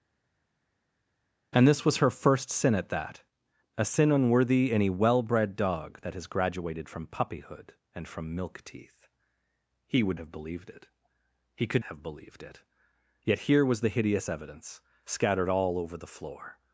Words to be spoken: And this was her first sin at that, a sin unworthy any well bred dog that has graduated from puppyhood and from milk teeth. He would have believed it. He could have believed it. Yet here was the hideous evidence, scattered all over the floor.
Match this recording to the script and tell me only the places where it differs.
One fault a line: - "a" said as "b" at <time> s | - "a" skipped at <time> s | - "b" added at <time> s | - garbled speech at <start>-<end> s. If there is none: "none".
none